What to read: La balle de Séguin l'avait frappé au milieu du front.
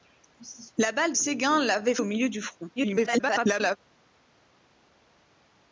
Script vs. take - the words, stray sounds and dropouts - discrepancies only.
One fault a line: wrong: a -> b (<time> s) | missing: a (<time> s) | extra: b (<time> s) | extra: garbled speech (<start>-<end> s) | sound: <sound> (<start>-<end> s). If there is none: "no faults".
missing: de (1.1 s)
missing: frappé (2.0 s)
extra: garbled speech (2.8-3.8 s)